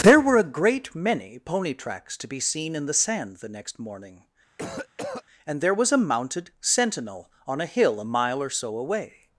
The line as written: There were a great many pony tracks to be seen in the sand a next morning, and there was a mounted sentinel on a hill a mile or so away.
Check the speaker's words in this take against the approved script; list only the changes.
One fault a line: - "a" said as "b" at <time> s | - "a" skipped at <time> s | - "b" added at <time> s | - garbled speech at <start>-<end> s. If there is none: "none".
- "a" said as "the" at 3.4 s